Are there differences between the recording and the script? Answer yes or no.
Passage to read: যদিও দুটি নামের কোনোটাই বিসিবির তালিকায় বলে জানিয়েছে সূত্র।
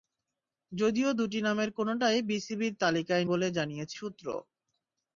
no